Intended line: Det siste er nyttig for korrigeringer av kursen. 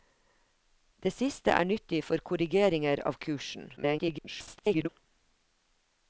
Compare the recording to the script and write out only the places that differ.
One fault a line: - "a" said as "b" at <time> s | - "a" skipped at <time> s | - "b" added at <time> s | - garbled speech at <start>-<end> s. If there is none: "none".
- garbled speech at 3.8-4.9 s